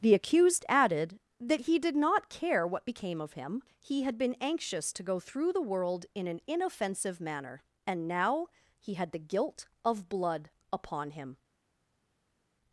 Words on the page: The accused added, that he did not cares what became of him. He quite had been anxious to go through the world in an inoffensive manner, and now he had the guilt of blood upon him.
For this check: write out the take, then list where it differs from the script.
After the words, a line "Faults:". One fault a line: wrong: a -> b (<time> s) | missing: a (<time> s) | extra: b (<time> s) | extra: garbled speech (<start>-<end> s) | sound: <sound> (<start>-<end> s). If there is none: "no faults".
The accused added, that he did not care what became of him. He had been anxious to go through the world in an inoffensive manner, and now he had the guilt of blood upon him.
Faults:
wrong: cares -> care (2.3 s)
missing: quite (4.0 s)